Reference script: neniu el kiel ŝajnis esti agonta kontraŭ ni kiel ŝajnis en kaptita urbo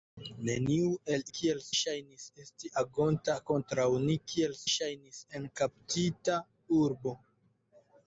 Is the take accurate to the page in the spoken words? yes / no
yes